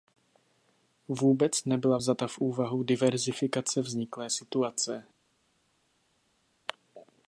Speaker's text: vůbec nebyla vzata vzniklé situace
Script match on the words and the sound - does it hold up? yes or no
no